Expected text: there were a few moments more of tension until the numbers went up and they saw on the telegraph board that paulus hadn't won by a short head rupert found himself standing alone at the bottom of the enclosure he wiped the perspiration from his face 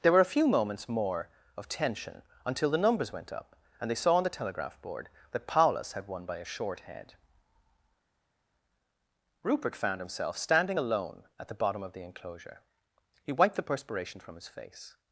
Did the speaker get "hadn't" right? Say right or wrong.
wrong